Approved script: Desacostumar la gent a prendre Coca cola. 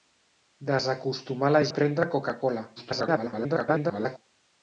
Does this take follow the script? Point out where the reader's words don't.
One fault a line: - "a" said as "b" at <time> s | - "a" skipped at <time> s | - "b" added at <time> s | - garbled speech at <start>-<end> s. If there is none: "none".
- "gent" skipped at 1.6 s
- garbled speech at 2.8-4.2 s